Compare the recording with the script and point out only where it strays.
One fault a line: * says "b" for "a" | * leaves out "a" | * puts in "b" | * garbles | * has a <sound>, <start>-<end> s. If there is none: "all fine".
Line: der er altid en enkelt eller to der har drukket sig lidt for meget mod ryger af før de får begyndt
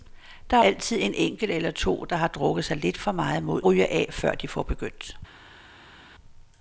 all fine